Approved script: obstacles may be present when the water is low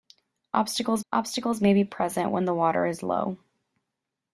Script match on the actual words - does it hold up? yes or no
no